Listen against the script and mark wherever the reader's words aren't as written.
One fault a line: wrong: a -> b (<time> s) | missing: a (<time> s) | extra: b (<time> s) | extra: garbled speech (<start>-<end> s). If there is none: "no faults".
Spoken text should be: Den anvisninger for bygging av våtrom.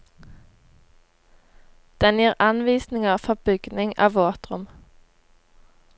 extra: gir (2.2 s)